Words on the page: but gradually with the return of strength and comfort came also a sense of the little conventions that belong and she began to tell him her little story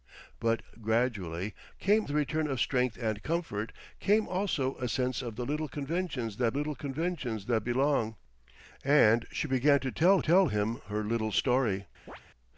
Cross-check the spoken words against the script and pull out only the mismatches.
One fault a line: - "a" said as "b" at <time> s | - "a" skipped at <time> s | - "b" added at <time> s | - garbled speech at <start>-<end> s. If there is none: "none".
- "with" said as "came" at 1.8 s
- "little conventions that" added at 6.5 s
- "tell" added at 10.2 s